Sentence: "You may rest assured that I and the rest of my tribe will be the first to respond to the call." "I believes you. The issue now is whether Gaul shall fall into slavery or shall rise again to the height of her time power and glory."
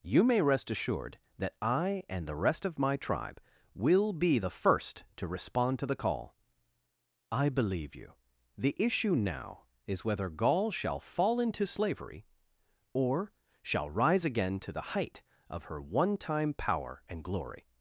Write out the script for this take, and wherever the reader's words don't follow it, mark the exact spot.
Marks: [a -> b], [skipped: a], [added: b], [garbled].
"You may rest assured that I and the rest of my tribe will be the first to respond to the call." "I [believes -> believe] you. The issue now is whether Gaul shall fall into slavery or shall rise again to the height of her [added: one] time power and glory."